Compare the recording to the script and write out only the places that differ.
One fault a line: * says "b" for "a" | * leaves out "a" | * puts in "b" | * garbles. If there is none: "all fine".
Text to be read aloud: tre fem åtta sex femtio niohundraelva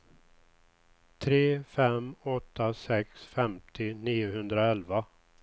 all fine